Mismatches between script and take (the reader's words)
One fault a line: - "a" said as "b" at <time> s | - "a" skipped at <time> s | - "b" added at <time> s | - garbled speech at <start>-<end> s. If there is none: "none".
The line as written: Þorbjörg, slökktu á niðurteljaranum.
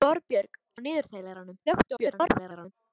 - "slökktu" skipped at 0.6 s
- garbled speech at 1.7-2.7 s